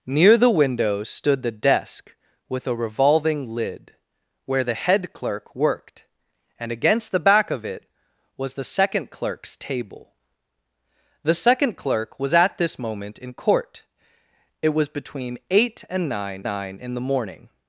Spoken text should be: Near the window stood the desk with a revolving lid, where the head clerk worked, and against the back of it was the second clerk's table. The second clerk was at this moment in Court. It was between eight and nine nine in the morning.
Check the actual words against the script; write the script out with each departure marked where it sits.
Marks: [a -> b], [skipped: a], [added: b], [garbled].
Near the window stood the desk with a revolving lid, where the head clerk worked, and against the back of it was the second clerk's table. The second clerk was at this moment in Court. It was between eight and nine nine in the morning.